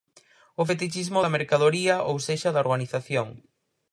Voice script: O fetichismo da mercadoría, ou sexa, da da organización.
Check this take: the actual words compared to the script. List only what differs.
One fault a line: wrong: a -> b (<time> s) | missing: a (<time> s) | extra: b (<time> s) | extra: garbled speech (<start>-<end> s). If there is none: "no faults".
missing: da (2.6 s)